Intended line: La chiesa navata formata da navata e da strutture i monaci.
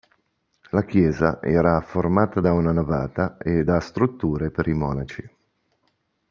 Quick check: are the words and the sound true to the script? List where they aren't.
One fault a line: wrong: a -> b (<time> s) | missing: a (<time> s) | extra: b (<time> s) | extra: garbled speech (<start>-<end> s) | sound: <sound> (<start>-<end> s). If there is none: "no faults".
wrong: navata -> era (1.4 s)
extra: una (2.5 s)
extra: per (4.5 s)